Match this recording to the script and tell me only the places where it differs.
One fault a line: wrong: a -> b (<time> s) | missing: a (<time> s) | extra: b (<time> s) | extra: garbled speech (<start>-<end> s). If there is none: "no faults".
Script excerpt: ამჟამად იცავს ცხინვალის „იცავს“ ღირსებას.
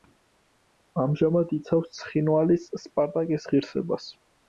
wrong: იცავს -> სპარტაკის (2.9 s)